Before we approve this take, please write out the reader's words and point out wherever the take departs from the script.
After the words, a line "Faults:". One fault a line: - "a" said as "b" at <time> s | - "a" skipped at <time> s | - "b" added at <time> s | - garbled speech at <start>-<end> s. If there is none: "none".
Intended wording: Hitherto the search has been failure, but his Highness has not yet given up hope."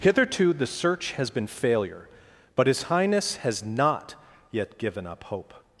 Hitherto the search has been failure, but his Highness has not yet given up hope."
Faults:
none